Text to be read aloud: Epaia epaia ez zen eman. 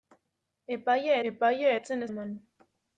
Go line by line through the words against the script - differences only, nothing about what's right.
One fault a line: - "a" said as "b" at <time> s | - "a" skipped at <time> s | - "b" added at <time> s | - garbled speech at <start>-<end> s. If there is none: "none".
none